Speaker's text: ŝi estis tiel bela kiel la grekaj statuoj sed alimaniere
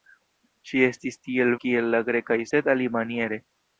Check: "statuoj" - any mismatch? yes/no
yes